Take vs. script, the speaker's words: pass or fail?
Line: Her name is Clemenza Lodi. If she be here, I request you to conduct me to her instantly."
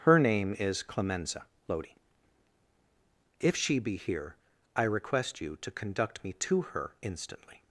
pass